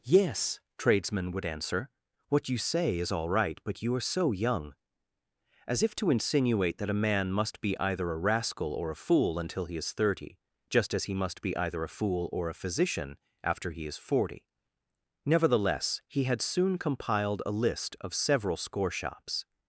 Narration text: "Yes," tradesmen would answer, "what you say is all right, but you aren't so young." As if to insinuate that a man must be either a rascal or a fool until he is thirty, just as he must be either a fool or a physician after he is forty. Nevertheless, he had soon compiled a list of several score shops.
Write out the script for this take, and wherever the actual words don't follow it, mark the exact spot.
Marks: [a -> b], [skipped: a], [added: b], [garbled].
"Yes," tradesmen would answer, "what you say is all right, but you [aren't -> are] so young." As if to insinuate that a man must be either a rascal or a fool until he is thirty, just as he must be either a fool or a physician after he is forty. Nevertheless, he had soon compiled a list of several score shops.